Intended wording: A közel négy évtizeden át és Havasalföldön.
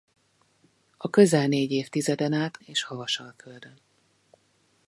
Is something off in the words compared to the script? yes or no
no